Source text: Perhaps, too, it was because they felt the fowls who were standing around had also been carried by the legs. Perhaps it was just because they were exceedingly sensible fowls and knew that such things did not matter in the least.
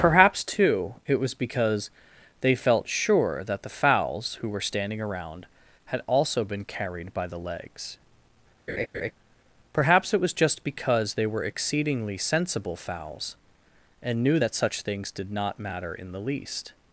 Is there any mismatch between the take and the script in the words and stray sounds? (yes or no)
yes